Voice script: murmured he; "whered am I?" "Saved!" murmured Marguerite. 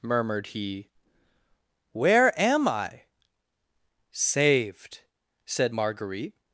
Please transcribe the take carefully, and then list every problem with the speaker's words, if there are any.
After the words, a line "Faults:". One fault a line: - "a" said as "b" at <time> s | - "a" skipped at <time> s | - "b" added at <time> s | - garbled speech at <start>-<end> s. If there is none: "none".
murmured he; "where am I?" "Saved!" said Marguerite.
Faults:
- "whered" said as "where" at 1.9 s
- "murmured" said as "said" at 5.5 s